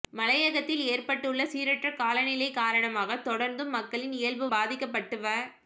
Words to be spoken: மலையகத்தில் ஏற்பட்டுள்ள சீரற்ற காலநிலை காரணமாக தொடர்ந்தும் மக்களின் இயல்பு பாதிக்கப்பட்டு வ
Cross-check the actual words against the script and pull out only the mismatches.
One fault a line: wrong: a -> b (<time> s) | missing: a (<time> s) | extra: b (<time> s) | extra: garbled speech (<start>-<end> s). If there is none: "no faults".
no faults